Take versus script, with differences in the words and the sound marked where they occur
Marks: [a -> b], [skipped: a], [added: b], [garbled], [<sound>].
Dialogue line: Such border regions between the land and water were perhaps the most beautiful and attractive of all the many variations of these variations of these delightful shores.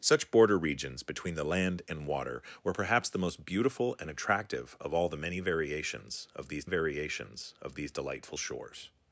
Such border regions between the land and water were perhaps the most beautiful and attractive of all the many variations of these variations of these delightful shores.